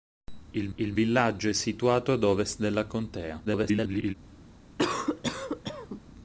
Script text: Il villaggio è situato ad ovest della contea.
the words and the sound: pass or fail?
fail